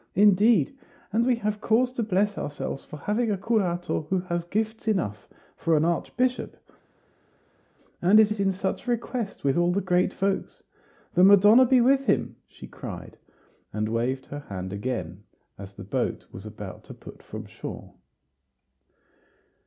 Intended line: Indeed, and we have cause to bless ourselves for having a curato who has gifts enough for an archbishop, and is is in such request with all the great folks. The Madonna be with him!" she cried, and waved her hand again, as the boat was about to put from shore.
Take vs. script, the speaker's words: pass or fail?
pass